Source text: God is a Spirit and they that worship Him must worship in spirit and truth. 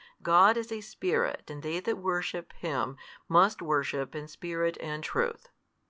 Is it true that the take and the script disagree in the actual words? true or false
false